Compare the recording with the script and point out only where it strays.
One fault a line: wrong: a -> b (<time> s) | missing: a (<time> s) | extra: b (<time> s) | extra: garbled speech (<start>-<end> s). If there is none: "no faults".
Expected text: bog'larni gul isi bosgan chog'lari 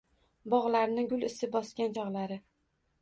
no faults